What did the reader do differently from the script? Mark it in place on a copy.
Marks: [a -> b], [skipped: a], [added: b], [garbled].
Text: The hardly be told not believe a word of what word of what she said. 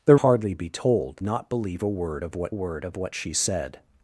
The hardly be told not believe a word of what word of what she said.